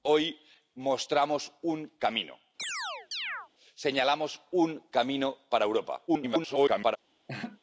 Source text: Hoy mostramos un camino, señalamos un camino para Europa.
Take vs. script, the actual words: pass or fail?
fail